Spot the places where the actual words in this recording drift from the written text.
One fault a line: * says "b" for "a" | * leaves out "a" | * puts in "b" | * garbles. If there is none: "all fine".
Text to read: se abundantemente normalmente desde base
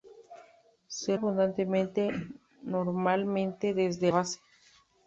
all fine